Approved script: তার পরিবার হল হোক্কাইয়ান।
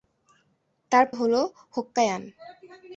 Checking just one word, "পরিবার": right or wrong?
wrong